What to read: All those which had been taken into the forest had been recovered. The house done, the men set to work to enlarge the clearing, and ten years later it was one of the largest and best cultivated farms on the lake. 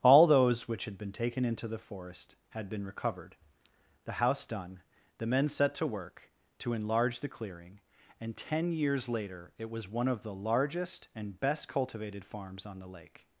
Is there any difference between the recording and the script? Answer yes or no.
no